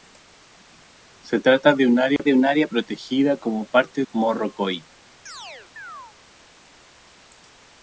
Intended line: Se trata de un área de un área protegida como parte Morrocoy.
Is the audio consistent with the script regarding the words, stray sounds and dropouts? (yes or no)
no